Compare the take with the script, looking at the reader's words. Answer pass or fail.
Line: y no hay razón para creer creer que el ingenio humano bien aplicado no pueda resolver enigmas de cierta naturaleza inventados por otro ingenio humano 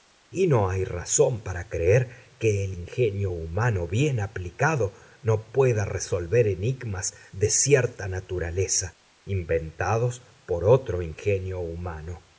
fail